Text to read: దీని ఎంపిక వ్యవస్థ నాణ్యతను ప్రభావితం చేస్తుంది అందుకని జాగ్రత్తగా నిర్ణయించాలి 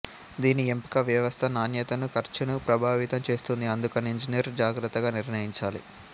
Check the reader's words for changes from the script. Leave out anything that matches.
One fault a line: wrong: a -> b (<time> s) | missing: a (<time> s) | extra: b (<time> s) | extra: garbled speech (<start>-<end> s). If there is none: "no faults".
extra: ఖర్చును (2.1 s)
extra: ఇంజనీర్ (4.2 s)